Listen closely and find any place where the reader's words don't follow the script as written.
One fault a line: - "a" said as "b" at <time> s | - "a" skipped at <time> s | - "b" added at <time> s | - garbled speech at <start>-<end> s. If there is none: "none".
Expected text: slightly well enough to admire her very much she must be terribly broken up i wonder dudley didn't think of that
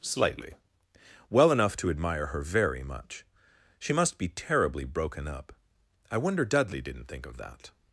none